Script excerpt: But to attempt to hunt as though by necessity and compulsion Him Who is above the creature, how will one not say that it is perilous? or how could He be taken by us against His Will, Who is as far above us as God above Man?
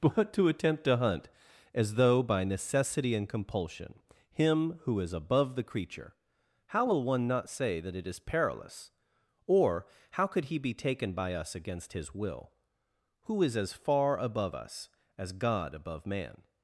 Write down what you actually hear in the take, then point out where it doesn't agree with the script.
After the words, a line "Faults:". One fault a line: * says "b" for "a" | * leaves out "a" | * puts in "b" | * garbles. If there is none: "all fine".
But to attempt to hunt as though by necessity and compulsion Him Who is above the creature, how will one not say that it is perilous? or how could He be taken by us against His Will, Who is as far above us as God above Man?
Faults:
all fine